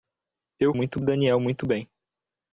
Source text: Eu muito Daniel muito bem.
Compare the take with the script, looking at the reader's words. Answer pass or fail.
pass